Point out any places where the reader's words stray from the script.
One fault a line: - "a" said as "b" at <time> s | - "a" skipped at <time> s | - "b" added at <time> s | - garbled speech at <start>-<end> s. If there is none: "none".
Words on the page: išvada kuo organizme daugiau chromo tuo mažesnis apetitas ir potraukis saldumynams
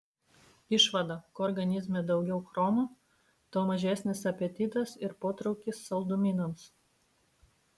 none